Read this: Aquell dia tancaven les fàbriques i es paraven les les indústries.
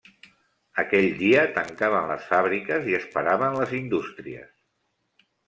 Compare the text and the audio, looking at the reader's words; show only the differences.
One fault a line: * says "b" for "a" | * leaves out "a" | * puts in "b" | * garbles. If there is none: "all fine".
* leaves out "les"